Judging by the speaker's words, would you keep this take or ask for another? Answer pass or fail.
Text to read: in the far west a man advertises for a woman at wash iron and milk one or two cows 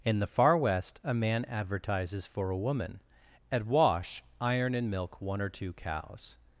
pass